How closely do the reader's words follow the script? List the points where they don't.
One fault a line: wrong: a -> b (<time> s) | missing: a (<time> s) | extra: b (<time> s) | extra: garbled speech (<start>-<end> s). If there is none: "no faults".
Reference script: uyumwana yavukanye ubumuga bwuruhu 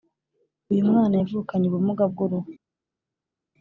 no faults